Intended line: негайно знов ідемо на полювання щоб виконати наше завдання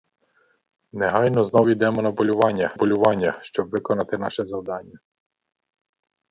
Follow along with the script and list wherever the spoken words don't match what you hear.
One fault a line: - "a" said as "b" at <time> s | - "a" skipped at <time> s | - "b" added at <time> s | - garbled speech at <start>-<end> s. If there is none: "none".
- "полювання" added at 2.7 s